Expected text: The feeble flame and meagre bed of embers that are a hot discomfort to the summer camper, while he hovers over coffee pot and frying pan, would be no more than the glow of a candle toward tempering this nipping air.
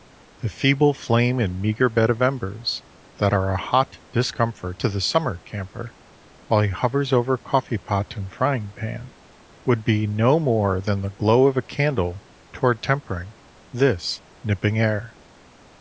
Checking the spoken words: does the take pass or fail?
pass